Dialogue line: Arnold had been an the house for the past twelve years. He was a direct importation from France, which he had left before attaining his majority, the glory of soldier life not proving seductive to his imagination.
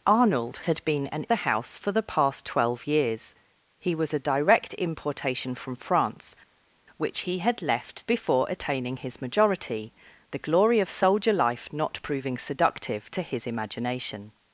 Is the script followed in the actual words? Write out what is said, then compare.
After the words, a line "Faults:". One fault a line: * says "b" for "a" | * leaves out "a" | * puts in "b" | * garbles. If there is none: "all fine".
Arnold had been an the house for the past twelve years. He was a direct importation from France, which he had left before attaining his majority, the glory of soldier life not proving seductive to his imagination.
Faults:
all fine